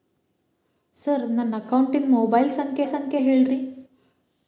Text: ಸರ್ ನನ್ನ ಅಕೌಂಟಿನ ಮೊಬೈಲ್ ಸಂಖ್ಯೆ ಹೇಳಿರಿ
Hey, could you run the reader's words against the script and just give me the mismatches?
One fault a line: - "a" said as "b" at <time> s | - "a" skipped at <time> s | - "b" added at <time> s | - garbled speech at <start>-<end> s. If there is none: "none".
- "ಸಂಖ್ಯೆ" added at 2.9 s